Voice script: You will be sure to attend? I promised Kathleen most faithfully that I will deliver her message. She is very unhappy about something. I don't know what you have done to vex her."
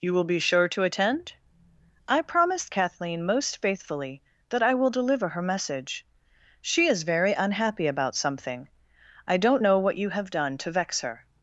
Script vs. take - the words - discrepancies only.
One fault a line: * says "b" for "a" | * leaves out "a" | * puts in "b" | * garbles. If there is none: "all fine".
all fine